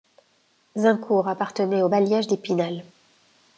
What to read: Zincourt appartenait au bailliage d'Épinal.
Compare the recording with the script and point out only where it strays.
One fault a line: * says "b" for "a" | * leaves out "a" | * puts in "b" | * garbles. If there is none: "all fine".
all fine